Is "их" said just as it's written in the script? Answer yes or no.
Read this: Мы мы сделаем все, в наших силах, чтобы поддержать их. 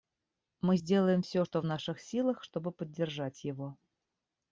no